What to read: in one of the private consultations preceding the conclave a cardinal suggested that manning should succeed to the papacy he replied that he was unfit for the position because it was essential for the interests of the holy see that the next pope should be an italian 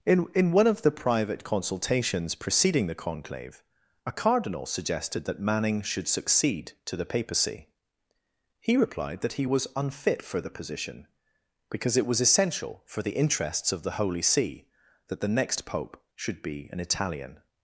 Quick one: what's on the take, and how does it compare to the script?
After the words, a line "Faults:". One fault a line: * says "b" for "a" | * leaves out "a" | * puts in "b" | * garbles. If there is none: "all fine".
in in one of the private consultations preceding the conclave a cardinal suggested that manning should succeed to the papacy he replied that he was unfit for the position because it was essential for the interests of the holy see that the next pope should be an italian
Faults:
* puts in "in"